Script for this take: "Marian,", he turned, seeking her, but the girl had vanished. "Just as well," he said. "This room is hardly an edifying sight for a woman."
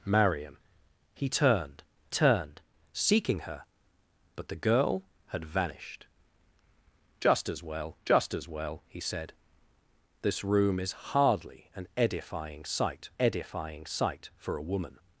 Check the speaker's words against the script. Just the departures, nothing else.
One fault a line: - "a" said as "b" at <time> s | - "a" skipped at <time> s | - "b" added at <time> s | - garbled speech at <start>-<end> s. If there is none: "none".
- "turned" added at 2.1 s
- "just as well" added at 8.0 s
- "edifying sight" added at 13.2 s